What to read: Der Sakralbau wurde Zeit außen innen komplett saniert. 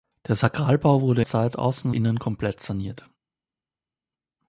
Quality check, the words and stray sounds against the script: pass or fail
pass